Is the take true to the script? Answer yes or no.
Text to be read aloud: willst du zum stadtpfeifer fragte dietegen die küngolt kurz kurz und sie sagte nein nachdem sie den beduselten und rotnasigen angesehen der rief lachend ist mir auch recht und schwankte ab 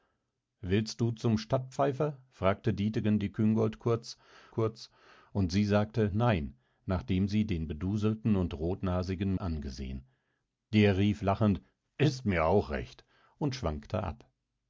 yes